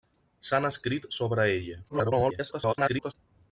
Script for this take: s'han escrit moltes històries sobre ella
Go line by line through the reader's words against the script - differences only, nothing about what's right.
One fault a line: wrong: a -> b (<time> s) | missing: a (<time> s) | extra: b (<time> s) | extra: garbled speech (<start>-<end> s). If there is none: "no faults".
missing: moltes històries (1.1 s)
extra: garbled speech (1.9-3.1 s)